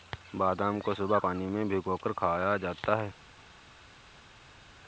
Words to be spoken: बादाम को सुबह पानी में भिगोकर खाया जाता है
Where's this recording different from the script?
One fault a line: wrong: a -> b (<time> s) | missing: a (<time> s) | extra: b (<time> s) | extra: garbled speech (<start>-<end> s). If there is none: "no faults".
no faults